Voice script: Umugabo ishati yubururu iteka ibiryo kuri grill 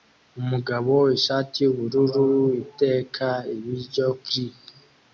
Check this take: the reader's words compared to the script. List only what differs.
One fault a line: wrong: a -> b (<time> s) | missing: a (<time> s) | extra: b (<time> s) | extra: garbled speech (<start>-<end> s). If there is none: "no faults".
missing: kuri (4.1 s)